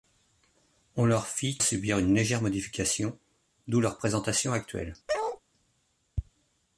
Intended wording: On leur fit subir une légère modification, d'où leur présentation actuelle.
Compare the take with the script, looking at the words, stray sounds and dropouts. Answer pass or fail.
fail